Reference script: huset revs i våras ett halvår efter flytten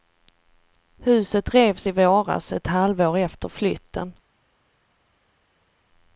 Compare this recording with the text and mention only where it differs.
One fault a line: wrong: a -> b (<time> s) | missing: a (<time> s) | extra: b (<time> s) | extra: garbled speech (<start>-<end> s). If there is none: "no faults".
no faults